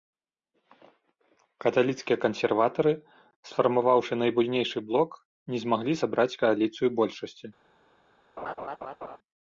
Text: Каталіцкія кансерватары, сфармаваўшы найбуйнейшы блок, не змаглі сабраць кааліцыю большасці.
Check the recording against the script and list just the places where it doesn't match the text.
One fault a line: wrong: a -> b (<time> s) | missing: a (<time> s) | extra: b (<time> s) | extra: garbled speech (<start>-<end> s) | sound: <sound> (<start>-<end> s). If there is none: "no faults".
sound: laugh (8.4-9.2 s)